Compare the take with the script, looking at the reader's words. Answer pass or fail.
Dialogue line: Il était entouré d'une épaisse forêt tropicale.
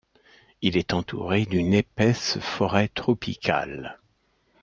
fail